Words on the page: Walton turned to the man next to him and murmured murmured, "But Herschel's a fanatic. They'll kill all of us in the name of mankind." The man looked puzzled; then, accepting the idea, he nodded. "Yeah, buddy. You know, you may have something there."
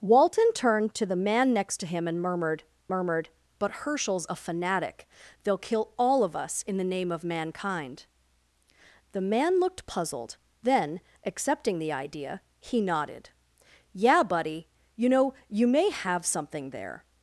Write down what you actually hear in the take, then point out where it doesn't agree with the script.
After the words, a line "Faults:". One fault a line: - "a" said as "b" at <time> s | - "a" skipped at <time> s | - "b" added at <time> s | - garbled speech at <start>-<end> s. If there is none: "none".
Walton turned to the man next to him and murmured murmured, "But Herschel's a fanatic. They'll kill all of us in the name of mankind." The man looked puzzled; then, accepting the idea, he nodded. "Yeah, buddy. You know, you may have something there."
Faults:
none